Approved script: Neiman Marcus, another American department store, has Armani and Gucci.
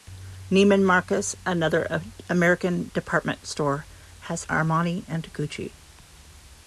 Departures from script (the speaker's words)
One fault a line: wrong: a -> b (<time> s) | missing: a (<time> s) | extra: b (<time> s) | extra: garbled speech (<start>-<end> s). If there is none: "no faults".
no faults